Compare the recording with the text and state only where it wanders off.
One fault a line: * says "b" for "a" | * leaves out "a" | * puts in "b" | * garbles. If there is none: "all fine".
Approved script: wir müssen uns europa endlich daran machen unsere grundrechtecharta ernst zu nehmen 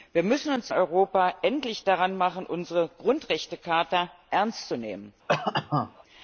all fine